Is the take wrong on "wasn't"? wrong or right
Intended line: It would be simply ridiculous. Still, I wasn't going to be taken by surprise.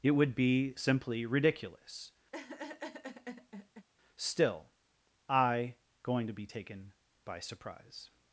wrong